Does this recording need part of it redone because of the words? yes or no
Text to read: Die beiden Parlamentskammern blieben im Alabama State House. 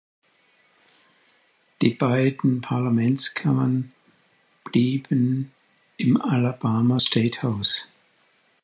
no